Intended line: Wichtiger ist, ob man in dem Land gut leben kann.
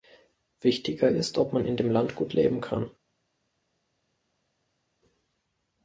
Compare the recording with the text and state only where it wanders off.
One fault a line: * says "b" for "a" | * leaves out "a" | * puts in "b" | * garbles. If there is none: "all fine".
all fine